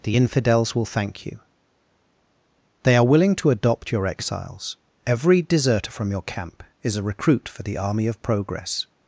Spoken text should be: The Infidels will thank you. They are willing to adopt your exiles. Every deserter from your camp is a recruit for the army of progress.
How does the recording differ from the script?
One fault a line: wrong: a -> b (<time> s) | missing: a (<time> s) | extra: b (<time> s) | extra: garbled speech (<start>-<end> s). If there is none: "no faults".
no faults